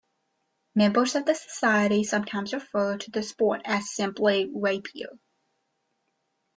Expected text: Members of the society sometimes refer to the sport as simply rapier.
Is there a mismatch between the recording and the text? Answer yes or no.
no